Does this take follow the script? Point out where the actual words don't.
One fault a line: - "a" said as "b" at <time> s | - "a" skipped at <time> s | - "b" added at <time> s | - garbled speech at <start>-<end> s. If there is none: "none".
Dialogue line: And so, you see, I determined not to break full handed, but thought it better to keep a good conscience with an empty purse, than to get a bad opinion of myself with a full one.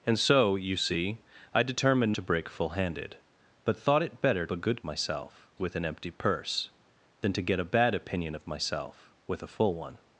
- "not" skipped at 2.2 s
- "to keep" skipped at 4.5 s
- "conscience" said as "myself" at 4.8 s